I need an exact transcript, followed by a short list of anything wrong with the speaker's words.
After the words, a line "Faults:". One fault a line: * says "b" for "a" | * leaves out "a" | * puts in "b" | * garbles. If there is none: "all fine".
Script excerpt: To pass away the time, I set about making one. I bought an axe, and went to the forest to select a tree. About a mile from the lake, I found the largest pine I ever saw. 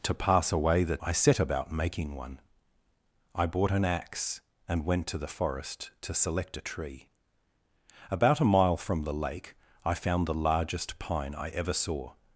To pass away the I set about making one. I bought an axe, and went to the forest to select a tree. About a mile from the lake, I found the largest pine I ever saw.
Faults:
* leaves out "time"